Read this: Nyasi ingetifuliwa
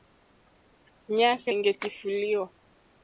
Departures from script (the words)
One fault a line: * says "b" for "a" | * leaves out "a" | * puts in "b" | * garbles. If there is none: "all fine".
all fine